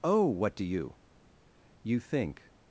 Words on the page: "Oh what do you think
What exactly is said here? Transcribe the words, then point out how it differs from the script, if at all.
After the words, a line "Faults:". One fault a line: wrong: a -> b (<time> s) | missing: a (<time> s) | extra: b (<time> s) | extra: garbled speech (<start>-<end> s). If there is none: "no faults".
"Oh what do you you think
Faults:
extra: you (1.8 s)